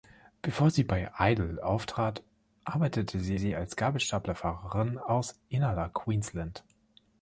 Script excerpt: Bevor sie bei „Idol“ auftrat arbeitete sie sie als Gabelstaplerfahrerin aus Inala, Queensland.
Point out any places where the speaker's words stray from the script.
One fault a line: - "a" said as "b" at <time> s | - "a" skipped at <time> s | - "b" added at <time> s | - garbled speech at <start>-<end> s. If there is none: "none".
none